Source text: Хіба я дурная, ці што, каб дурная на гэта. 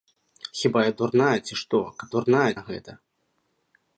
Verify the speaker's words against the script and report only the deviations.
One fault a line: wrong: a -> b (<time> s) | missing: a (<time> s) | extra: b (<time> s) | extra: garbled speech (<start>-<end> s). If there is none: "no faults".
no faults